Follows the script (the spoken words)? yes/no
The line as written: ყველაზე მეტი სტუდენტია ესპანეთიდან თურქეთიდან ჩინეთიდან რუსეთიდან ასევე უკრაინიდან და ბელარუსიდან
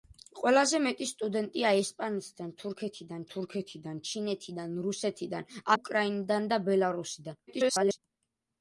no